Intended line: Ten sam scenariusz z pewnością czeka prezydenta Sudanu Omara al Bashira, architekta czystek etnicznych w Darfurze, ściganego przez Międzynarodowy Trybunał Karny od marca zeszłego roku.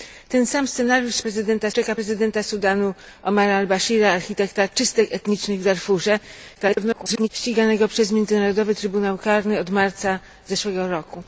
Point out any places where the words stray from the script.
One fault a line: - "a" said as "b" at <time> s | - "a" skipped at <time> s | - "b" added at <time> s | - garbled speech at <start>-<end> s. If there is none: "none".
- "pewnością" said as "prezydenta" at 1.2 s
- garbled speech at 6.5-7.3 s